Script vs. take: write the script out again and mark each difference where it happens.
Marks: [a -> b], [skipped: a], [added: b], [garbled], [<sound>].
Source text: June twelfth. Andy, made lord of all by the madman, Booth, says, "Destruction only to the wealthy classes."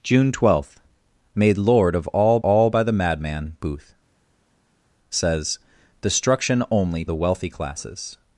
June twelfth. [skipped: Andy,] made lord of all [added: all] by the madman, Booth, says, "Destruction only [skipped: to] the wealthy classes."